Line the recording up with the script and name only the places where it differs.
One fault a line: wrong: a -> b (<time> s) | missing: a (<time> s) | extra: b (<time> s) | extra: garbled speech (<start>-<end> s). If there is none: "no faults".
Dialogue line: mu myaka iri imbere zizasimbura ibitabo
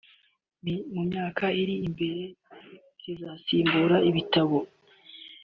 no faults